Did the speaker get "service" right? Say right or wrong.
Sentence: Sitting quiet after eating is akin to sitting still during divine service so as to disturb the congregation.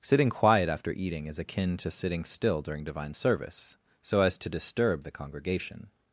right